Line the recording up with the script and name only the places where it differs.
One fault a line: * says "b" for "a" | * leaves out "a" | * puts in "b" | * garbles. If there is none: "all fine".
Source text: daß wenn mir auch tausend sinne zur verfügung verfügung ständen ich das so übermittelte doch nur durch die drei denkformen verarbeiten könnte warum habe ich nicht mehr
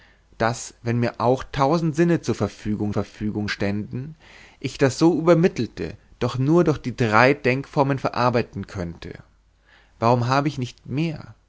all fine